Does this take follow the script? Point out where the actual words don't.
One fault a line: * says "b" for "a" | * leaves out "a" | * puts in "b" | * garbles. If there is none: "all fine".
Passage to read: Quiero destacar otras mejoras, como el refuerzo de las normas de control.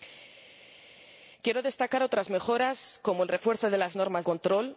* leaves out "de"